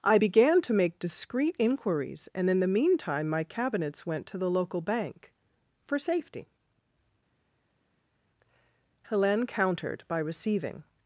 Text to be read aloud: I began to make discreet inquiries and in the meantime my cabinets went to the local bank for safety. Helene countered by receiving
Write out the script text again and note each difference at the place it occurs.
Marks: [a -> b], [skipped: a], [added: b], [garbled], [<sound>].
I began to make discreet inquiries and in the meantime my cabinets went to the local bank for safety. Helene countered by receiving